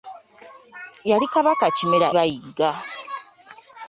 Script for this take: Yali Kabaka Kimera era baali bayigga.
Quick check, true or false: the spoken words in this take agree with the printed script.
false